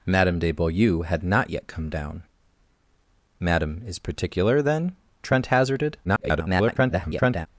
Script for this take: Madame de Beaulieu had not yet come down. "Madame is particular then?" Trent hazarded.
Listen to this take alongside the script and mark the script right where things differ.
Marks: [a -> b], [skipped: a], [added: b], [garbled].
Madame de Beaulieu had not yet come down. "Madame is particular then?" Trent hazarded. [garbled]